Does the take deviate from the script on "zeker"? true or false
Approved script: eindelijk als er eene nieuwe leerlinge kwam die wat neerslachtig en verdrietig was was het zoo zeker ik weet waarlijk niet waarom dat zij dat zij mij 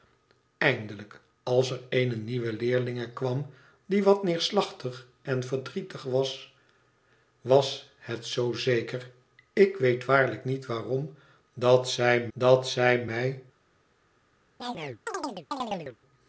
false